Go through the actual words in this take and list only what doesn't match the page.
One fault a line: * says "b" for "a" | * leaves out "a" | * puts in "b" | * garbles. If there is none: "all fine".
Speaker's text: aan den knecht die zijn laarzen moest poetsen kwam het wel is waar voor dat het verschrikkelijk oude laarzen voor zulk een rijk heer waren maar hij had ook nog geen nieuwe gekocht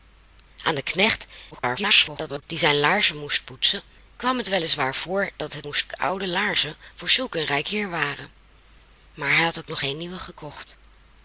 * garbles
* says "moest" for "verschrikkelijk"